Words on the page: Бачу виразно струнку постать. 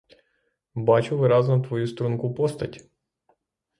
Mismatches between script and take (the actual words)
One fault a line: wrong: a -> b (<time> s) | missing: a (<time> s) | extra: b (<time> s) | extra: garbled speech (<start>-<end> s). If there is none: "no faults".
extra: твою (1.6 s)